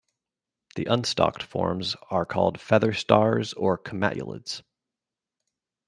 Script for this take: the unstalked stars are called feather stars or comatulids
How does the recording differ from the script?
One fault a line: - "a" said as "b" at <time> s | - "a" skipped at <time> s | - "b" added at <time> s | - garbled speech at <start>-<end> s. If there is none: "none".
- "stars" said as "forms" at 1.4 s